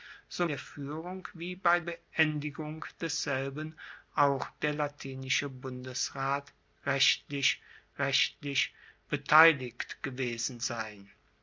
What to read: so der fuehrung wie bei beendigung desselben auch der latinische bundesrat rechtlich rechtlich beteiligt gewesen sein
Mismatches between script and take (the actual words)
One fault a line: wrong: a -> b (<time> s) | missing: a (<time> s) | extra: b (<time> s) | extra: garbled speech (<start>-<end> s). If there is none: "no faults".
no faults